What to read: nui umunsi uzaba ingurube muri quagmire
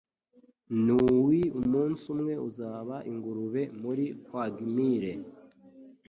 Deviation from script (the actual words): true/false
true